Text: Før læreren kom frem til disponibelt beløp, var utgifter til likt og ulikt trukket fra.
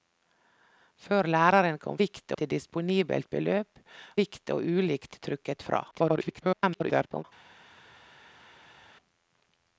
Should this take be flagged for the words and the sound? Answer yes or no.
yes